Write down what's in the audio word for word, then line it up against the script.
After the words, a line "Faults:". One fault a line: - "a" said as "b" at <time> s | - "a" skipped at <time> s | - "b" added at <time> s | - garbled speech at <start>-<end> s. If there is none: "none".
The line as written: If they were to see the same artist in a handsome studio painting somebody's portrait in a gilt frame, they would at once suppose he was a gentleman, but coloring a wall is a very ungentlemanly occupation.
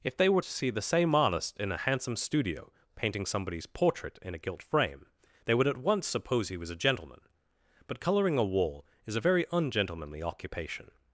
If they were to see the same artist in a handsome studio painting somebody's portrait in a gilt frame, they would at once suppose he was a gentleman, but coloring a wall is a very ungentlemanly occupation.
Faults:
none